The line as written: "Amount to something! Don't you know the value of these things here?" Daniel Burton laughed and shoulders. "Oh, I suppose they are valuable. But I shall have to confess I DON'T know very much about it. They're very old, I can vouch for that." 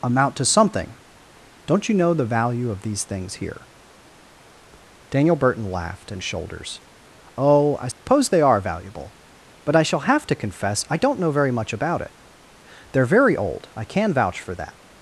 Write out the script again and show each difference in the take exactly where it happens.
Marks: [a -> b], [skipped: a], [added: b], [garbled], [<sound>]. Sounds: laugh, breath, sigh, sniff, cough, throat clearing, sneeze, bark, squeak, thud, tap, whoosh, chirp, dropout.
"Amount to something! Don't you know the value of these things here?" Daniel Burton laughed and shoulders. "Oh, I suppose [dropout] they are valuable. But I shall have to confess I DON'T know very much about it. They're very old, I can vouch for that."